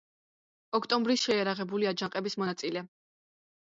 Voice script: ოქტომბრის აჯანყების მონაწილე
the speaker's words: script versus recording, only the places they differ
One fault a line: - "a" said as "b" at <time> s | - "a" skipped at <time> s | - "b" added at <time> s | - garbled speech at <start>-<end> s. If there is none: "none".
- "შეიარაღებული" added at 1.3 s